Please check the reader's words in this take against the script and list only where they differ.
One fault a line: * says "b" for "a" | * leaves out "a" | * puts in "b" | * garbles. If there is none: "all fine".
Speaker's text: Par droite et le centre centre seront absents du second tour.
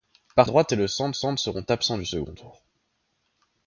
all fine